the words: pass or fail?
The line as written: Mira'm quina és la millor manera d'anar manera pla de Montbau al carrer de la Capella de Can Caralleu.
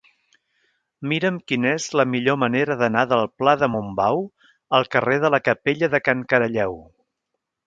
fail